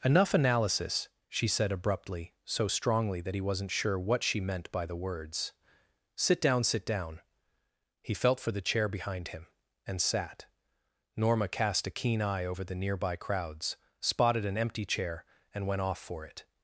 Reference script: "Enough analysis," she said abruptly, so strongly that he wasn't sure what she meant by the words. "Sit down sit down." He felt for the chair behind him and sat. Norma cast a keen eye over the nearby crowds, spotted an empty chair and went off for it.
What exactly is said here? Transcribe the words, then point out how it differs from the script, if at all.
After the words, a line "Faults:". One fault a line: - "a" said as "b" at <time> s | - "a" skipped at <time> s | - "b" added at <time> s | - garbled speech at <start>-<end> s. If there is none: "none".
"Enough analysis," she said abruptly, so strongly that he wasn't sure what she meant by the words. "Sit down sit down." He felt for the chair behind him and sat. Norma cast a keen eye over the nearby crowds, spotted an empty chair and went off for it.
Faults:
none